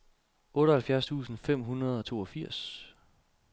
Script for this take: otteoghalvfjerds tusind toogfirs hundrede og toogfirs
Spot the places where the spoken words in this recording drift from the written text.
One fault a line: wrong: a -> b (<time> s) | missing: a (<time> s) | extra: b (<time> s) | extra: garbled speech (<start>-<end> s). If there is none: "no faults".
wrong: toogfirs -> fem (1.4 s)